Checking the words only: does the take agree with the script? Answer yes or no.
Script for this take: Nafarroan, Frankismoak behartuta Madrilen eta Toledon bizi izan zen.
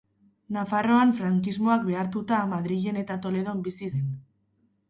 no